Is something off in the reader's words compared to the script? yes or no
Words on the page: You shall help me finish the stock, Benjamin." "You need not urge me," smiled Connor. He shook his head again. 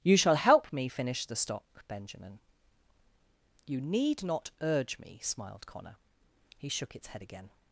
yes